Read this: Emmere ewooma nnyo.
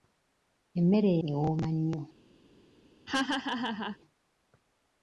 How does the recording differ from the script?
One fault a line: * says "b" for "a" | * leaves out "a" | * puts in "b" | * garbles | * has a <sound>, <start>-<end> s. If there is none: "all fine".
* has a laugh, 3.1-4.0 s